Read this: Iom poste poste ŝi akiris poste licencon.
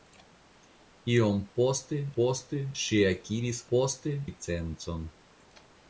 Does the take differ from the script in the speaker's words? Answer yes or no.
no